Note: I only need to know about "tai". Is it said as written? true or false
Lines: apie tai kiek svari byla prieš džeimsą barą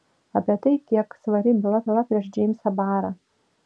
true